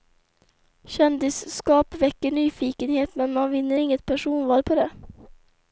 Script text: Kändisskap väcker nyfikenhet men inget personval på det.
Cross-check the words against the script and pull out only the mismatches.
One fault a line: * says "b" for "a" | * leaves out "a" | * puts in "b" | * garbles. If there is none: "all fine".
* puts in "man vinner"